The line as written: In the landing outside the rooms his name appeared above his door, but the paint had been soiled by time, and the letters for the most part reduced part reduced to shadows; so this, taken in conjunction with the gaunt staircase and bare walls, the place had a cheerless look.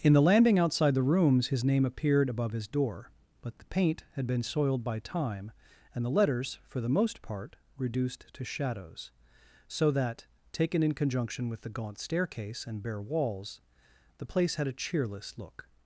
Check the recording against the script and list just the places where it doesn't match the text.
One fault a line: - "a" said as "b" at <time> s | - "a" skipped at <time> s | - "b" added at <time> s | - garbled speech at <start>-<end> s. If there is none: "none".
- "part reduced" skipped at 8.2 s
- "this" said as "that" at 9.9 s